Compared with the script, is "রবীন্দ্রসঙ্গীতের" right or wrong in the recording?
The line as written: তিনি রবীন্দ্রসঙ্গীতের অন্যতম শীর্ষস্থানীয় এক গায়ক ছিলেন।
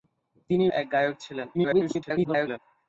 wrong